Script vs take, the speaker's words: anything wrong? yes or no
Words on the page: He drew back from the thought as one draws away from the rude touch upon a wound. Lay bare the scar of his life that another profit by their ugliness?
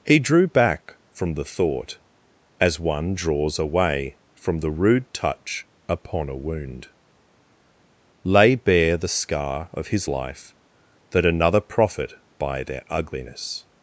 no